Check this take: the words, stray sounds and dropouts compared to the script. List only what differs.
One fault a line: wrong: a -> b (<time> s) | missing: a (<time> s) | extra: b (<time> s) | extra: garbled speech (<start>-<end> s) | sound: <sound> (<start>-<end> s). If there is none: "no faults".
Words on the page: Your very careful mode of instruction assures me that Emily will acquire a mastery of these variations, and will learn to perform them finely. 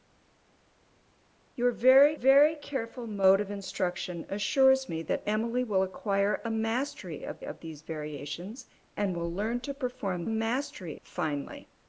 extra: very (2.1 s)
extra: of (7.4 s)
wrong: them -> mastery (10.3 s)